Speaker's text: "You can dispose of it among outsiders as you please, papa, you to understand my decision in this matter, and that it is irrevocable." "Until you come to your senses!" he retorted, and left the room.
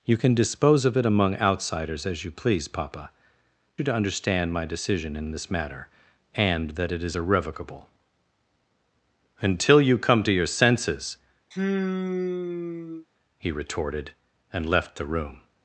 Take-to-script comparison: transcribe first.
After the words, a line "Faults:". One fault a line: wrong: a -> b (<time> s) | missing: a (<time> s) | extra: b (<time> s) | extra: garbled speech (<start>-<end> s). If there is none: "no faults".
"You can dispose of it among outsiders as you please, papa, you to understand my decision in this matter, and that it is irrevocable." "Until you come to your senses!" he retorted, and left the room.
Faults:
no faults